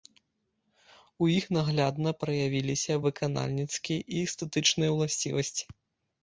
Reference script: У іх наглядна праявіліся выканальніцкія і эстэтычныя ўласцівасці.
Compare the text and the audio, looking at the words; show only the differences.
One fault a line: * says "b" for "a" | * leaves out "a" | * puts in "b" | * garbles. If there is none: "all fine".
all fine